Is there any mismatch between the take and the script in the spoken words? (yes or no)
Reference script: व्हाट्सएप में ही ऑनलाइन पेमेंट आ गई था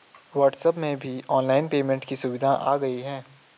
yes